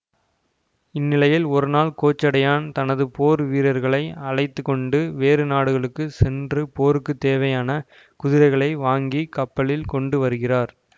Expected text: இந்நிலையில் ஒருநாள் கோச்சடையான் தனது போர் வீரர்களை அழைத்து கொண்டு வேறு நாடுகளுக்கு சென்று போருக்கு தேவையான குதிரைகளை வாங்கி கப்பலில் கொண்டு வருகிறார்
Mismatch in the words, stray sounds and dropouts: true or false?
false